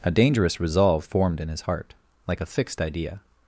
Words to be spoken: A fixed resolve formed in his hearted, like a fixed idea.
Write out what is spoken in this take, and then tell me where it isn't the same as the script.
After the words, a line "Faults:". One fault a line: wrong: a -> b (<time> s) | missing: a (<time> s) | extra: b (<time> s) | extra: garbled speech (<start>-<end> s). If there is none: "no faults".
A dangerous resolve formed in his heart, like a fixed idea.
Faults:
wrong: fixed -> dangerous (0.1 s)
wrong: hearted -> heart (1.6 s)